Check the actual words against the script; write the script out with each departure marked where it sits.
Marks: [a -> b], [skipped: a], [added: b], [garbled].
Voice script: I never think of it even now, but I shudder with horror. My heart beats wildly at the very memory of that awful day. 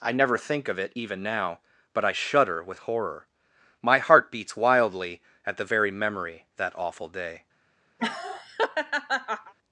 I never think of it even now, but I shudder with horror. My heart beats wildly at the very memory [skipped: of] that awful day.